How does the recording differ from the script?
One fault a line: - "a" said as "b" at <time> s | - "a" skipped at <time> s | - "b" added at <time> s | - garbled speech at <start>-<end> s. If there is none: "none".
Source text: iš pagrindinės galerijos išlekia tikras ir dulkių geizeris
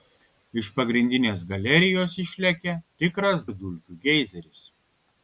none